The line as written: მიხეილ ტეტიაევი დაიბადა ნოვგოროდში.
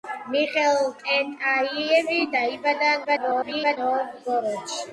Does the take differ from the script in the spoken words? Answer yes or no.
yes